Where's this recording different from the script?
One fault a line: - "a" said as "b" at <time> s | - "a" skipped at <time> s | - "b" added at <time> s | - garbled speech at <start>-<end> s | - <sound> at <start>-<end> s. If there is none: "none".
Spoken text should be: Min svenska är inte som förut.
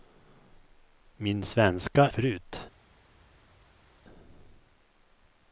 - "är inte som" skipped at 2.1 s